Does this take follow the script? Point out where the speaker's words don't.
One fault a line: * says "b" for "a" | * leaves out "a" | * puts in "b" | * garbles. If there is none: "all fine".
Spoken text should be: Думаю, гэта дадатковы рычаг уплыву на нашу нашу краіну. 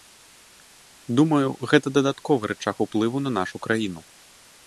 * leaves out "нашу"